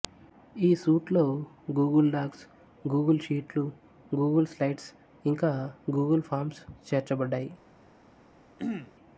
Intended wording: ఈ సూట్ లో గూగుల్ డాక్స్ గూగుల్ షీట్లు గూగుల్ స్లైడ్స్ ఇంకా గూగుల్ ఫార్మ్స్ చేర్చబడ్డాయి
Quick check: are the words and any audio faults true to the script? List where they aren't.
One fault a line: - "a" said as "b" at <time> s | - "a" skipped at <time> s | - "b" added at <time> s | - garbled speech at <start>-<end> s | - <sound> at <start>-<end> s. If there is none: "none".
- throat clearing at 8.6-8.9 s